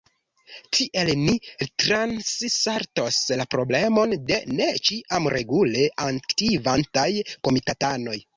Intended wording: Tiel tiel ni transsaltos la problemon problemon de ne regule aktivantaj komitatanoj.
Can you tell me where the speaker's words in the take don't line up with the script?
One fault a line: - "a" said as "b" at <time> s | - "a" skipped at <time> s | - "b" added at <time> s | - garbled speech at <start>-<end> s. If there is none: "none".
- "tiel" skipped at 1.1 s
- "problemon" skipped at 4.2 s
- "ĉiam" added at 4.9 s